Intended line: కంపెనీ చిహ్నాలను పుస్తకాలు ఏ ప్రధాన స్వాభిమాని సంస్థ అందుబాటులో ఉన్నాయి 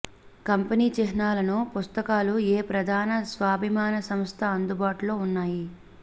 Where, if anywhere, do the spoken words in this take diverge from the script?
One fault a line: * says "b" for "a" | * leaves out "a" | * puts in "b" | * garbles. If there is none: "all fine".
all fine